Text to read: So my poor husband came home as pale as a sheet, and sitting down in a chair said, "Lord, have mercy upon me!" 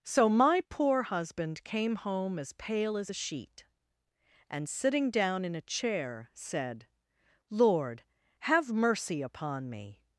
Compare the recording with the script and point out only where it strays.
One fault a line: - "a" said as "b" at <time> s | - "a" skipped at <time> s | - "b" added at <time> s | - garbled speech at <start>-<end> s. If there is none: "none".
none